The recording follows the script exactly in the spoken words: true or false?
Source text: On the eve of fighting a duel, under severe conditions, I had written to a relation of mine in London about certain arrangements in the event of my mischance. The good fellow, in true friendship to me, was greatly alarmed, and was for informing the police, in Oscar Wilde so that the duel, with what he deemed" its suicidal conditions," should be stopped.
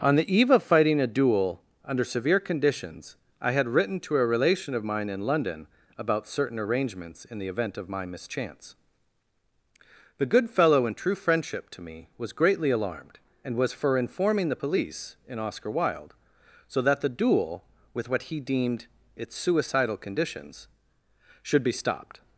true